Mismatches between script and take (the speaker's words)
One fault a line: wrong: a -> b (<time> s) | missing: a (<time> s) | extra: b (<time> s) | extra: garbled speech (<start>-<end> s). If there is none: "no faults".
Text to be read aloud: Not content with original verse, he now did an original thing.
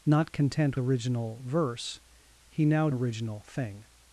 missing: with (0.8 s)
missing: did an (2.9 s)